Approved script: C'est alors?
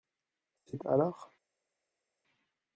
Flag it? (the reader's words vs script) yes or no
no